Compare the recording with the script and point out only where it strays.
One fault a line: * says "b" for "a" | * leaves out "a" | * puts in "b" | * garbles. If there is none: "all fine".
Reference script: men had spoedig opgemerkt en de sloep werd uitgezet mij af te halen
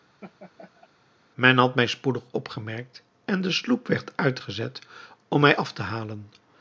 * puts in "mij"
* puts in "om"